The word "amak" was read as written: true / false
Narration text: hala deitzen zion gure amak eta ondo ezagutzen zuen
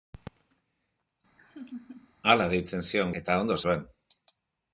false